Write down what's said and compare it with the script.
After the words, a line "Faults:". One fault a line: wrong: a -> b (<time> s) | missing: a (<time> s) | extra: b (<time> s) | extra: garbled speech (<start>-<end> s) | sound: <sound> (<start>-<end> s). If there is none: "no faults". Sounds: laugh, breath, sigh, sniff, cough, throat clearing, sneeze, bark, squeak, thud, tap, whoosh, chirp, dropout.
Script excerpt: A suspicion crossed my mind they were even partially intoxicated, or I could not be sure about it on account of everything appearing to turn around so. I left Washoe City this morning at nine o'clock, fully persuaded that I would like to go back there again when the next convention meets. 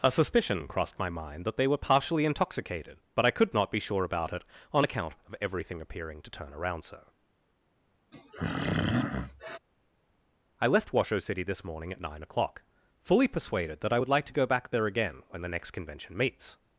A suspicion crossed my mind that they were partially intoxicated, but I could not be sure about it on account of everything appearing to turn around so. I left Washoe City this morning at nine o'clock, fully persuaded that I would like to go back there again when the next convention meets.
Faults:
extra: that (1.4 s)
missing: even (1.8 s)
wrong: or -> but (3.1 s)
sound: throat clearing (8.1-9.6 s)